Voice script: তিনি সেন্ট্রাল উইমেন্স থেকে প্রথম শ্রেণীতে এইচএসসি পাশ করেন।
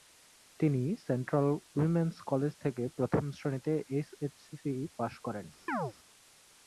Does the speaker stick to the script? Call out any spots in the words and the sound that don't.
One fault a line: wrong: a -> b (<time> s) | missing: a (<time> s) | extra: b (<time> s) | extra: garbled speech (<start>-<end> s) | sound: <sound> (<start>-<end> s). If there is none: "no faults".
extra: কলেজ (2.3 s)
sound: chirp (5.7-5.9 s)